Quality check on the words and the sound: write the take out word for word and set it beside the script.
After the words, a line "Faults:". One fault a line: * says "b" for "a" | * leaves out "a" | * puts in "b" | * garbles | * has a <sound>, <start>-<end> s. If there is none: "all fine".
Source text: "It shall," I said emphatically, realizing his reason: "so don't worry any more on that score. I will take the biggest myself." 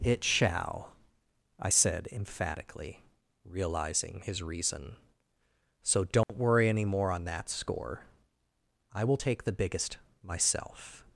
"It shall," I said emphatically, realizing his reason: "so don't worry any more on that score. I will take the biggest myself."
Faults:
* has a dropout, 6.2-6.3 s